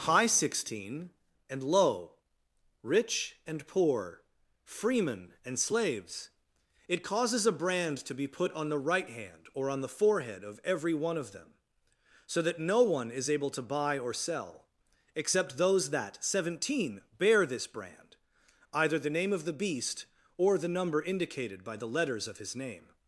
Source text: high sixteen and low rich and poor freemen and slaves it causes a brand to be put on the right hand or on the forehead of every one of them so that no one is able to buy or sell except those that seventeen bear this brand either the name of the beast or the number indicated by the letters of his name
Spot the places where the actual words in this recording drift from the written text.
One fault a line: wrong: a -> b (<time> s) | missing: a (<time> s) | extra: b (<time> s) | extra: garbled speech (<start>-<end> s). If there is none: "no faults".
no faults